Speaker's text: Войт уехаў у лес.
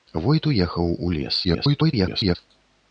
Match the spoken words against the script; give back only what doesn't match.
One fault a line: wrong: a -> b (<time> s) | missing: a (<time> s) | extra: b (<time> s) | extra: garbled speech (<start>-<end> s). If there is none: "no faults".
extra: garbled speech (1.4-2.4 s)